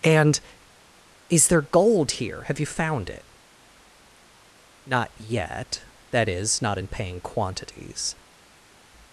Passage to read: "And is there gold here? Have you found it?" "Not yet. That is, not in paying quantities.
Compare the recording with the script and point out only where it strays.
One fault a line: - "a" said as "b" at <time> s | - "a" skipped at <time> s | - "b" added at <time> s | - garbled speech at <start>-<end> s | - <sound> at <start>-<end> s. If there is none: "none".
none